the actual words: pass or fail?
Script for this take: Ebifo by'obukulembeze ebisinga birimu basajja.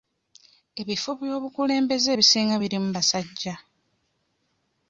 pass